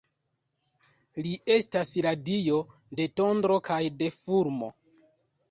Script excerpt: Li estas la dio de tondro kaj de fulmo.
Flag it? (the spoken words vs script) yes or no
no